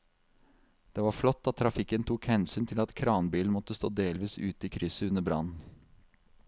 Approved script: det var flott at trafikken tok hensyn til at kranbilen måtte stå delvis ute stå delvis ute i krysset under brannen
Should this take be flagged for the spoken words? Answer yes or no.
yes